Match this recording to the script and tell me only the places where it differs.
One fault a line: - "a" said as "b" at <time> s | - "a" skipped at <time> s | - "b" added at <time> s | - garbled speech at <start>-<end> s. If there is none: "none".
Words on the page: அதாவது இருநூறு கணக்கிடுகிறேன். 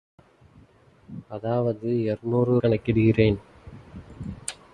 none